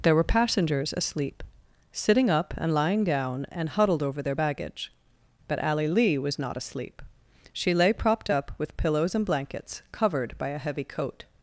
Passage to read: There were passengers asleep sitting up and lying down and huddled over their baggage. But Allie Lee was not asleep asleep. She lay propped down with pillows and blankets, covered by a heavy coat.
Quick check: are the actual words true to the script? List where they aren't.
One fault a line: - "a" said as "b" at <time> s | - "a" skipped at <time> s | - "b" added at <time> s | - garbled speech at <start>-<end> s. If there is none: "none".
- "asleep" skipped at 7.0 s
- "down" said as "up" at 8.3 s